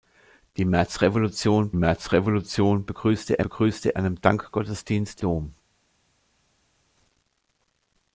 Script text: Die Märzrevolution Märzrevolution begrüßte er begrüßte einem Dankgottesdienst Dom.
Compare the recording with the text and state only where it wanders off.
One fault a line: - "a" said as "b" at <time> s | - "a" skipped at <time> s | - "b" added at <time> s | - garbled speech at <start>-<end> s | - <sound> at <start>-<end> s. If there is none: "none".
none